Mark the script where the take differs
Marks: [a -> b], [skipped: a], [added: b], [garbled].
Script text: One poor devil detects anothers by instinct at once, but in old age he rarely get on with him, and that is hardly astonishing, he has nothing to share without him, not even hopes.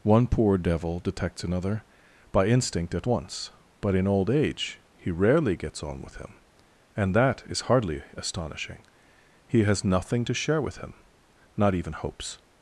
One poor devil detects [anothers -> another] by instinct at once, but in old age he rarely [get -> gets] on with him, and that is hardly astonishing, he has nothing to share [without -> with] him, not even hopes.